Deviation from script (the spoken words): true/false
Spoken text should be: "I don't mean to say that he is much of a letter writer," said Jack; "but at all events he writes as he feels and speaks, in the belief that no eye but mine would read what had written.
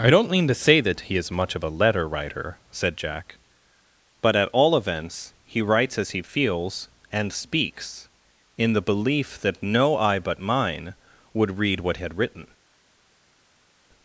false